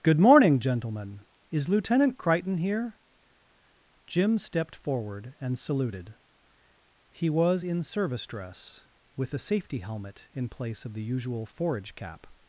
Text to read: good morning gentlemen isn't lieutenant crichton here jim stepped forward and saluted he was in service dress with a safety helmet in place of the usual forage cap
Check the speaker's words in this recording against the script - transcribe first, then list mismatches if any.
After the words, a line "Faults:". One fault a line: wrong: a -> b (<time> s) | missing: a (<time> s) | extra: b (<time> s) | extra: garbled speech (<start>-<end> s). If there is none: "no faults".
good morning gentlemen is lieutenant crichton here jim stepped forward and saluted he was in service dress with a safety helmet in place of the usual forage cap
Faults:
wrong: isn't -> is (1.5 s)